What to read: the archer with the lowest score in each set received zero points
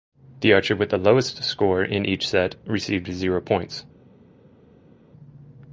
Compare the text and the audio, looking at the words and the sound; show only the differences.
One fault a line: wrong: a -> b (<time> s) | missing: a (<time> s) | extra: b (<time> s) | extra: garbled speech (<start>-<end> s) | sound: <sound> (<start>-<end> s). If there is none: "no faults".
no faults